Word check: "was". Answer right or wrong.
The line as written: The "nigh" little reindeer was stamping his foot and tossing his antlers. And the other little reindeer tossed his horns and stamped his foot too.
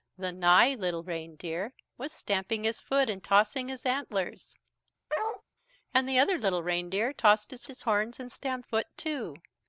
right